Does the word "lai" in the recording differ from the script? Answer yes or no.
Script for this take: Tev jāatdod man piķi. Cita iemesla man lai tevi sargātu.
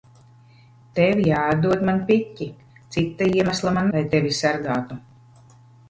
no